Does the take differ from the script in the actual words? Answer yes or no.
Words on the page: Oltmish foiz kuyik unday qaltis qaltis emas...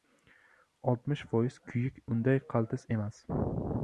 yes